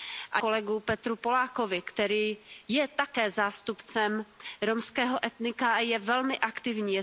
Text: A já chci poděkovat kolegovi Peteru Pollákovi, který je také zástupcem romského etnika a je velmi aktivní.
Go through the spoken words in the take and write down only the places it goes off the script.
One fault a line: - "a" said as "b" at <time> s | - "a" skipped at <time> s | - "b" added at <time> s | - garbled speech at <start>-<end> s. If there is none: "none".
- "já chci poděkovat" skipped at 0.4 s